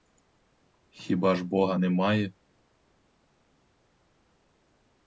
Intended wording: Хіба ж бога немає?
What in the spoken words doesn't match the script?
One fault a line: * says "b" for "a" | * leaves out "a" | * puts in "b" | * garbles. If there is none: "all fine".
all fine